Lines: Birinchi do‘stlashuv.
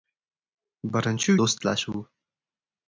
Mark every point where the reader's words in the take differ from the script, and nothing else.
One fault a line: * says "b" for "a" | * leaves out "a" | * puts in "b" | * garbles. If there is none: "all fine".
all fine